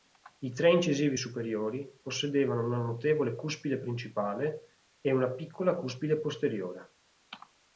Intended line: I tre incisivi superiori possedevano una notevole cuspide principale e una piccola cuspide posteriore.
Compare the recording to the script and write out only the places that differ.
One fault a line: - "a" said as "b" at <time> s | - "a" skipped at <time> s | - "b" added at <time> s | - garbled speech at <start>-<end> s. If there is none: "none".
none